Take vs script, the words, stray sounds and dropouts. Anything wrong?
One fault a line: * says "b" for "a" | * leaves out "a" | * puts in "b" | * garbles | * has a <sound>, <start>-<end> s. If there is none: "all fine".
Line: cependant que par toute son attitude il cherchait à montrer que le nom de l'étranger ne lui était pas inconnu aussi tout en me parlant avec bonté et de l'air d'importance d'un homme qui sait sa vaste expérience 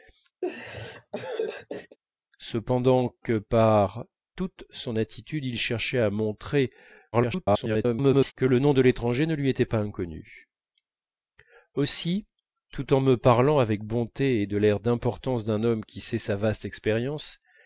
* has a laugh, 0.4-2.0 s
* garbles